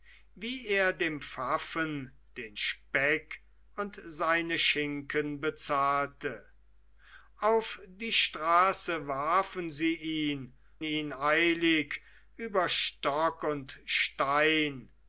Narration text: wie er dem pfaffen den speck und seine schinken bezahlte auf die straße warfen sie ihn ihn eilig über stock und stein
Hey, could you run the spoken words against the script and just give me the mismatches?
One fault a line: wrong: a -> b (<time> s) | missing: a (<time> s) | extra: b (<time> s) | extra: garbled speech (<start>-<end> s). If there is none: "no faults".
no faults